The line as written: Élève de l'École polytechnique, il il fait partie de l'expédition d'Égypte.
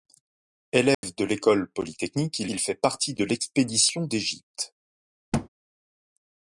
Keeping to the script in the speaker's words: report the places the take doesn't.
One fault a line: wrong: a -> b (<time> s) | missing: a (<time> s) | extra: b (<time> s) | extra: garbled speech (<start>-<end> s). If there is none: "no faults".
no faults